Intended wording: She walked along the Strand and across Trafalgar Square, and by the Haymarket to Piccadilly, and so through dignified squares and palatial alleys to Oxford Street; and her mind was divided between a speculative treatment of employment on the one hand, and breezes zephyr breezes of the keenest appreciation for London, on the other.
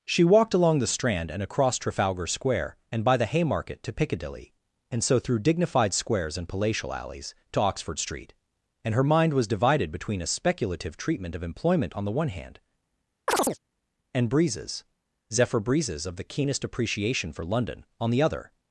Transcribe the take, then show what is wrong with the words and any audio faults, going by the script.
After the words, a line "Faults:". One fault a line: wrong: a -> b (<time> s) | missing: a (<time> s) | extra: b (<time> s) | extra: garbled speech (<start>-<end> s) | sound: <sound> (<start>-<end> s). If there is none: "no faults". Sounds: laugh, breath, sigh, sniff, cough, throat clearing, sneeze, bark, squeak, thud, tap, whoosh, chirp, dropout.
She walked along the Strand and across Trafalgar Square, and by the Haymarket to Piccadilly, and so through dignified squares and palatial alleys to Oxford Street; and her mind was divided between a speculative treatment of employment on the one hand, and breezes zephyr breezes of the keenest appreciation for London, on the other.
Faults:
sound: chirp (13.3-13.6 s)